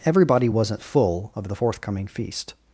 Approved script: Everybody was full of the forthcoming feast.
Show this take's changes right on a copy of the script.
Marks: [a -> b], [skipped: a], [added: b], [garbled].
Everybody [was -> wasn't] full of the forthcoming feast.